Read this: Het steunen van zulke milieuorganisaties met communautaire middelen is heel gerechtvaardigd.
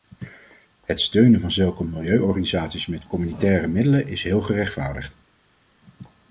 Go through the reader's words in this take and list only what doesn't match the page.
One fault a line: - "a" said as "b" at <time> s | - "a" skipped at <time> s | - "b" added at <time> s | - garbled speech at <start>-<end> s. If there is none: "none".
none